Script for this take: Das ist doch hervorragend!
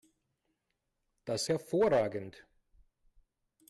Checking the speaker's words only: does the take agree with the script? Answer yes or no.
no